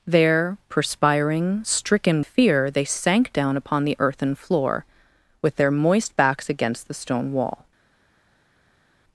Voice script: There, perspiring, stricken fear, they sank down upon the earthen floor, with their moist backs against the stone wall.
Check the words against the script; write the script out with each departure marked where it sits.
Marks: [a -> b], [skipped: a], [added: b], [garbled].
There, perspiring, stricken fear, they sank down upon the earthen floor, with their moist backs against the stone wall.